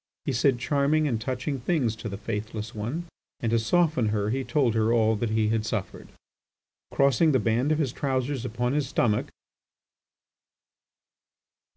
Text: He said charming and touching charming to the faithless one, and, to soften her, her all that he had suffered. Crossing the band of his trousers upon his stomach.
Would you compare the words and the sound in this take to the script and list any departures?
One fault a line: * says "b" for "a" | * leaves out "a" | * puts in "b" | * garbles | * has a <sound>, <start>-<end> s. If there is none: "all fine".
* says "things" for "charming"
* puts in "he told"